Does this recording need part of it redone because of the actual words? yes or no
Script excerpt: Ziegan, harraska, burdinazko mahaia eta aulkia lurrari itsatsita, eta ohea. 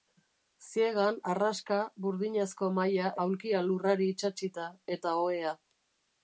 yes